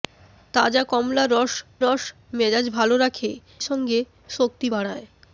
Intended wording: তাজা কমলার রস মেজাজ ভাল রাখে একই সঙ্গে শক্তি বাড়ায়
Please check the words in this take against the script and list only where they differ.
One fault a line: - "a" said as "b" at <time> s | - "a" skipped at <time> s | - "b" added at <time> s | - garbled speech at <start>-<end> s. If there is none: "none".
- "রস" added at 1.8 s
- "একই" skipped at 3.3 s